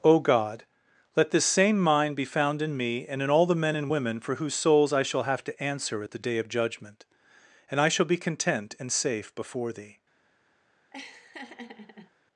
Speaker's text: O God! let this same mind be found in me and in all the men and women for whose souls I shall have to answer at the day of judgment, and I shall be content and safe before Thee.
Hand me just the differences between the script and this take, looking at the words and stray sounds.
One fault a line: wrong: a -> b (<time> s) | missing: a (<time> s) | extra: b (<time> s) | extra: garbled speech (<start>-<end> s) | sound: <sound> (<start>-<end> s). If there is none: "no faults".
sound: laugh (10.9-12.1 s)